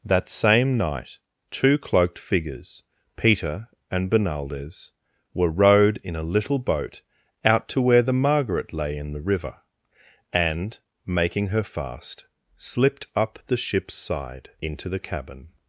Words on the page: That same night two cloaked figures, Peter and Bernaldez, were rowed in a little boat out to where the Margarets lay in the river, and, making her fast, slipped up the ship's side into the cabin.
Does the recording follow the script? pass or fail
fail